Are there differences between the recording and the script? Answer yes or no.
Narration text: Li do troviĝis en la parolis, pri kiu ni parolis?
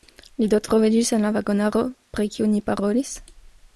yes